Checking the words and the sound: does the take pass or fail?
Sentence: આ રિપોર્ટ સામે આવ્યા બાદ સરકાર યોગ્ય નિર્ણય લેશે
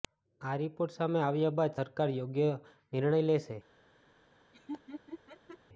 fail